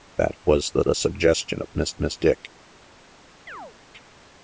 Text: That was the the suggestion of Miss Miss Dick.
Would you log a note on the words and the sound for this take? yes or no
yes